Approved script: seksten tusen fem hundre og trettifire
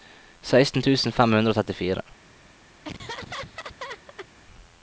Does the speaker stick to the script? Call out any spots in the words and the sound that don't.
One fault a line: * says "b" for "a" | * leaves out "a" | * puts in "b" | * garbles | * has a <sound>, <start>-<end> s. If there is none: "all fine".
* has a laugh, 2.8-4.3 s